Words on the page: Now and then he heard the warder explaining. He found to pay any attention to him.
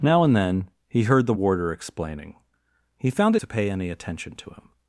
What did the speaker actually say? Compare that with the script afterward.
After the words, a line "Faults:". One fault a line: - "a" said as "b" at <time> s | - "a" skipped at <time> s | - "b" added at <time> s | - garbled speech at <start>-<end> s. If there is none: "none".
Now and then he heard the warder explaining. He found to pay any attention to him.
Faults:
none